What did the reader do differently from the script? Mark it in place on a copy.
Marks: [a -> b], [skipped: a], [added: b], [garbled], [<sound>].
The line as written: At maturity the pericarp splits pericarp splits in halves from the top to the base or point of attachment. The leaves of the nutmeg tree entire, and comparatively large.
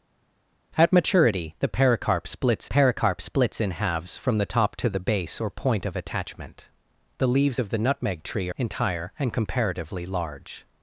At maturity the pericarp splits pericarp splits in halves from the top to the base or point of attachment. The leaves of the nutmeg tree entire, and comparatively large.